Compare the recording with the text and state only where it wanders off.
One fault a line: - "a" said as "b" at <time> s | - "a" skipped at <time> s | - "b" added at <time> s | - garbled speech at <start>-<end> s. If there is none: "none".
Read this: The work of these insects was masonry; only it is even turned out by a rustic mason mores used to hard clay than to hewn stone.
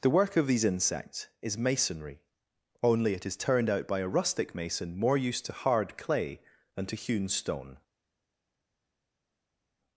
- "was" said as "is" at 1.4 s
- "even" skipped at 3.4 s
- "mores" said as "more" at 5.0 s